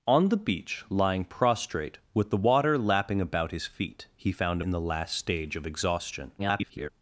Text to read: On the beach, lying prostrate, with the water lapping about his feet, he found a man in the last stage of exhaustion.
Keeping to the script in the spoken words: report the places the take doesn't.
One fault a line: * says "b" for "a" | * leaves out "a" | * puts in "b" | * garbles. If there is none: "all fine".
* leaves out "a man"
* garbles